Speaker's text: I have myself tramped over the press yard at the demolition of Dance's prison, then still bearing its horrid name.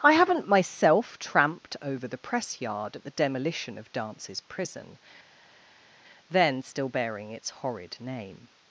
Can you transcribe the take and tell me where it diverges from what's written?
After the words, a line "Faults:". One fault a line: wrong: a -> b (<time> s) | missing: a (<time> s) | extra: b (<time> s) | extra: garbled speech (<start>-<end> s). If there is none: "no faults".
I haven't myself tramped over the press yard at the demolition of Dance's prison, then still bearing its horrid name.
Faults:
wrong: have -> haven't (0.1 s)